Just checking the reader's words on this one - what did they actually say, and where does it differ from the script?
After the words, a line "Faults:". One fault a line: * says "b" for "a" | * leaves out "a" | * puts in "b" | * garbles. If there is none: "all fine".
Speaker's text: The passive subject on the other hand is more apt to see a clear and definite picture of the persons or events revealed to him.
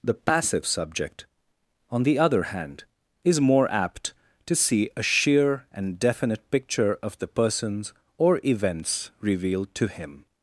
The passive subject on the other hand is more apt to see a sheer and definite picture of the persons or events revealed to him.
Faults:
* says "sheer" for "clear"